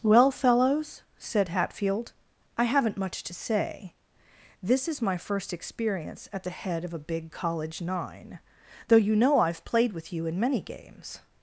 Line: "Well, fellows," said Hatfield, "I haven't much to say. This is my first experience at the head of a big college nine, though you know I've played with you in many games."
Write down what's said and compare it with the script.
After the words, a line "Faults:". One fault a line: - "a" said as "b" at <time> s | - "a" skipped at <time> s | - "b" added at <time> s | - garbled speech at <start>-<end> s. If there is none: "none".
"Well, fellows," said Hatfield, "I haven't much to say. This is my first experience at the head of a big college nine, though you know I've played with you in many games."
Faults:
none